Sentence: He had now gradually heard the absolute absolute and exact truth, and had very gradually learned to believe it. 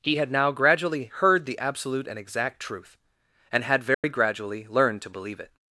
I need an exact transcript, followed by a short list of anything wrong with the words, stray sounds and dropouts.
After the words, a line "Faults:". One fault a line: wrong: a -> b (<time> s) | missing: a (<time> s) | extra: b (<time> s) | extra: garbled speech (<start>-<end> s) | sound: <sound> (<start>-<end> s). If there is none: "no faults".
He had now gradually heard the absolute and exact truth, and had very gradually learned to believe it.
Faults:
missing: absolute (2.1 s)
sound: dropout (3.9-4.0 s)